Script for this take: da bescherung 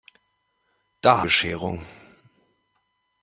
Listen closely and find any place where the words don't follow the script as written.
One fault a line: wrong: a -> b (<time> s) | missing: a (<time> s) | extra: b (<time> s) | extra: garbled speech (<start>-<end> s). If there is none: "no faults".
no faults